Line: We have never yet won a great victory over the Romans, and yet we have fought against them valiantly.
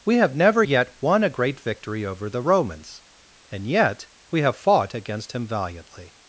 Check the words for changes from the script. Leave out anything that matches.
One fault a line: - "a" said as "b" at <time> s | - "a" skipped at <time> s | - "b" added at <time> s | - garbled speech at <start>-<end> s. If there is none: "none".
- "them" said as "him" at 5.3 s